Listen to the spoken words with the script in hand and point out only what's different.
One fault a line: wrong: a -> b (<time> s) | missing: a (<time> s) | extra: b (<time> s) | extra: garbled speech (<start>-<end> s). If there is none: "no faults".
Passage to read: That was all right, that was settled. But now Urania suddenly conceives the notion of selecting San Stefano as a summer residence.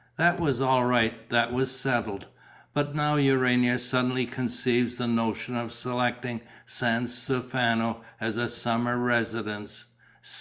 no faults